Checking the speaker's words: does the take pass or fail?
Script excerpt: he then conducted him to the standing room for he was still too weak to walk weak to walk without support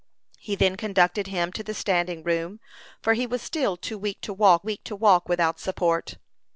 pass